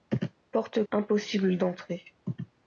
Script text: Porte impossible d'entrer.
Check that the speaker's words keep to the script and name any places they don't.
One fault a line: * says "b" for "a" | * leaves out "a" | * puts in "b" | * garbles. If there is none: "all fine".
all fine